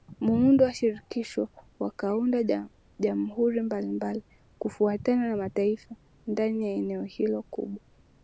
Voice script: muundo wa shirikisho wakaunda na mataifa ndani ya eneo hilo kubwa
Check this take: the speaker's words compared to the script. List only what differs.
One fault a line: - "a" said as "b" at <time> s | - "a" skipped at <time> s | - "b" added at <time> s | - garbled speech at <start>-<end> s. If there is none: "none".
- "jamhuri mbalimbali kufuatana" added at 3.0 s